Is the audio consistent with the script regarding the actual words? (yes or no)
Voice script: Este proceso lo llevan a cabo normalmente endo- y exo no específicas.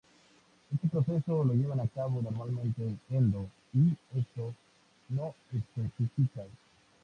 yes